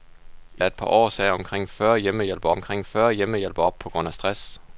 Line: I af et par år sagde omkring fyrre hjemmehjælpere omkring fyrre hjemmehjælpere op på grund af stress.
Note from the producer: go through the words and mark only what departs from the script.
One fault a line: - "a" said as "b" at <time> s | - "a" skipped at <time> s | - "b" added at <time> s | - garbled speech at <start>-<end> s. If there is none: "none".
none